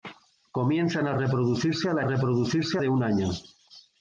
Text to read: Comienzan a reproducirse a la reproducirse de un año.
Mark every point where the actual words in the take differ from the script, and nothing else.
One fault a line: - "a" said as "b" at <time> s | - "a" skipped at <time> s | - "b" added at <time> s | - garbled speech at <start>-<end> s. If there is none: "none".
none